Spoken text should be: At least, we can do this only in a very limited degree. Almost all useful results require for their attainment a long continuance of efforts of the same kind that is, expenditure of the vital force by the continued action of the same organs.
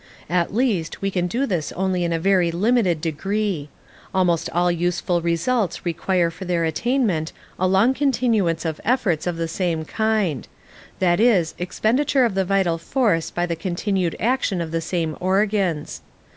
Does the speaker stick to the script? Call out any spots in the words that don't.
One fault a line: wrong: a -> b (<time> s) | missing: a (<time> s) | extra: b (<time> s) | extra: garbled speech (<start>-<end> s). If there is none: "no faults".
no faults